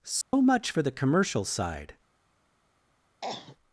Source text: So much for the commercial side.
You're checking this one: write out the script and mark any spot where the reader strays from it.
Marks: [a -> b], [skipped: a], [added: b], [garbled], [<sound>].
So [dropout] much for the commercial side. [cough]